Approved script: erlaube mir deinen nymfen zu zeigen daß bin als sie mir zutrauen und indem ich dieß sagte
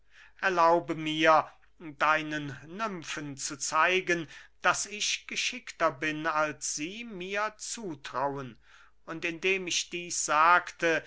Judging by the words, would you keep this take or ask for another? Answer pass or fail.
fail